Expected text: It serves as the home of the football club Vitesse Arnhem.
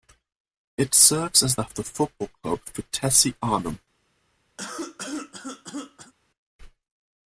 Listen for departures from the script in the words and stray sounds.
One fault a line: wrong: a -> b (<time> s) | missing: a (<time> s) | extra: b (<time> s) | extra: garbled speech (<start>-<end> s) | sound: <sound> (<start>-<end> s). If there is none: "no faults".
missing: home (1.6 s)
sound: cough (4.6-6.1 s)